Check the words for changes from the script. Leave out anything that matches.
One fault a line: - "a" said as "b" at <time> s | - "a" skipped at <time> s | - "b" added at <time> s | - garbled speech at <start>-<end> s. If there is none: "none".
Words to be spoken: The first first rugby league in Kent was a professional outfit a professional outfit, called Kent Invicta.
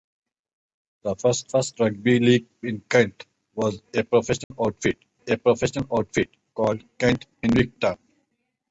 none